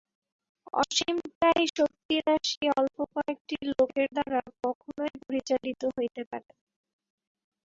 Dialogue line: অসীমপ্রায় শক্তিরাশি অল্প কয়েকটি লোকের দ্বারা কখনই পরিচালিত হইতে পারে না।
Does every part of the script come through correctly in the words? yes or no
yes